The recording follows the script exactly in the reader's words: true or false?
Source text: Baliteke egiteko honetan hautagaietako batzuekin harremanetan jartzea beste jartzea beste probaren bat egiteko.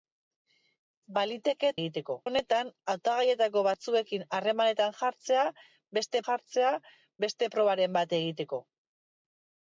true